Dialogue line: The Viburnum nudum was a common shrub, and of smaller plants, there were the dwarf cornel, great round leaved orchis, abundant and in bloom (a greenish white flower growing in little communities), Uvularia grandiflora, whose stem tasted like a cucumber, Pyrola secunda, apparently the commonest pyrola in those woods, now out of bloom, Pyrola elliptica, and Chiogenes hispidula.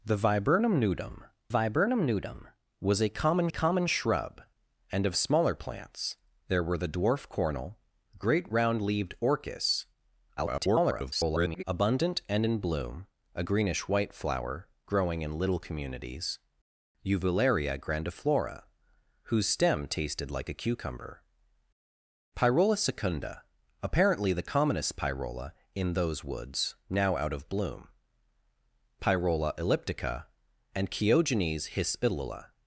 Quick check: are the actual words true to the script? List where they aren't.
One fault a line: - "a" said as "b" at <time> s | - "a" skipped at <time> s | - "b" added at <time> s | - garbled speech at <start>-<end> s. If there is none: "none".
- "Viburnum nudum" added at 1.5 s
- "common" added at 3.5 s
- garbled speech at 10.4-11.6 s